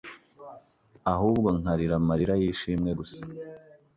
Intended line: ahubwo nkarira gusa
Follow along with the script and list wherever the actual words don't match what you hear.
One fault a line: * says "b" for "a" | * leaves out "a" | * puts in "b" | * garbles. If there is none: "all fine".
* puts in "amarira y'ishimwe"